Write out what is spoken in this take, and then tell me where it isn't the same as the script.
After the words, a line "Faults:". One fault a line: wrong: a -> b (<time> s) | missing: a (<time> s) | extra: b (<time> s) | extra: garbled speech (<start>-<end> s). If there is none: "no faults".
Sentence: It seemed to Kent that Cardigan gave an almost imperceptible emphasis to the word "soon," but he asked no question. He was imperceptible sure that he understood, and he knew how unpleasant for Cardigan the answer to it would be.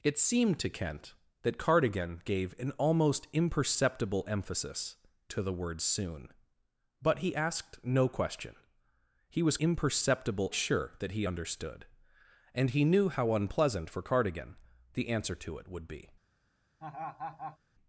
It seemed to Kent that Cardigan gave an almost imperceptible emphasis to the word "soon," but he asked no question. He was imperceptible sure that he understood, and he knew how unpleasant for Cardigan the answer to it would be.
Faults:
no faults